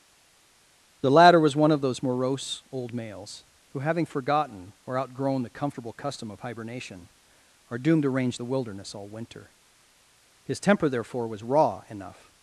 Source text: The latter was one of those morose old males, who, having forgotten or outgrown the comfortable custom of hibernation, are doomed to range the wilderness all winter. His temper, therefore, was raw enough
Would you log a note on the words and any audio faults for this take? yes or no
no